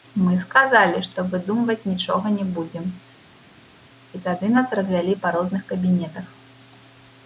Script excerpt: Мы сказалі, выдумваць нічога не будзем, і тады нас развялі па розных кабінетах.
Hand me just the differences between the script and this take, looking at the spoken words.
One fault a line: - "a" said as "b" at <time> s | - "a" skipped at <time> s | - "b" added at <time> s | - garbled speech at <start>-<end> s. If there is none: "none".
- "што" added at 1.1 s